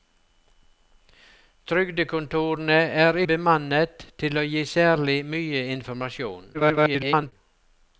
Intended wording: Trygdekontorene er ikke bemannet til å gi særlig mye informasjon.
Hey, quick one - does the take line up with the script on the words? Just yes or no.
no